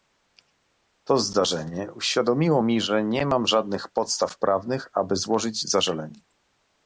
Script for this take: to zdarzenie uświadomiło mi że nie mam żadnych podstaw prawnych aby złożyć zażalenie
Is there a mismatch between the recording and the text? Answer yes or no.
no